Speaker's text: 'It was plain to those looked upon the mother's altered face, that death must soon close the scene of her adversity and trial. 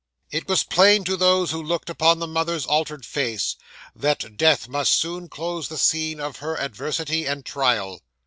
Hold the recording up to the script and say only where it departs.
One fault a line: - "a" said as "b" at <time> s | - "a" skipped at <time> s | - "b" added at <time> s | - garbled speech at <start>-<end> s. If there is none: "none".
- "who" added at 1.5 s